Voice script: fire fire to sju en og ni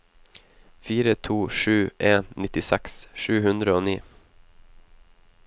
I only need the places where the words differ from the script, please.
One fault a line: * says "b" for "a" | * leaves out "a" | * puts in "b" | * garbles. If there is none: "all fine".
* leaves out "fire"
* puts in "nittiseks sju hundre"